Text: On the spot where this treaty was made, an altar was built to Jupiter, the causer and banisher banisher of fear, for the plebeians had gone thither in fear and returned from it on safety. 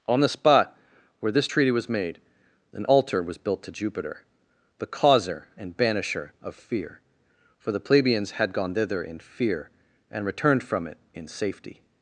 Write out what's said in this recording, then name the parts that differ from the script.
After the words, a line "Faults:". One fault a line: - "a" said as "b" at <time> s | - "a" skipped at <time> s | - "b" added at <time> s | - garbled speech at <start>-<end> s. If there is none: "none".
On the spot where this treaty was made, an altar was built to Jupiter, the causer and banisher of fear, for the plebeians had gone thither in fear and returned from it in safety.
Faults:
- "banisher" skipped at 6.3 s
- "on" said as "in" at 11.1 s